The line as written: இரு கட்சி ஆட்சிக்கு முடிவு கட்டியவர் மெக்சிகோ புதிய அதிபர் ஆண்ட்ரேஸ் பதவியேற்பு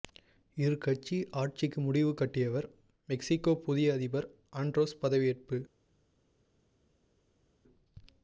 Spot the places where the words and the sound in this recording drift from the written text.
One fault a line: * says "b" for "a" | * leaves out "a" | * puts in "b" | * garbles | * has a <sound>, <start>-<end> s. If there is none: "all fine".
all fine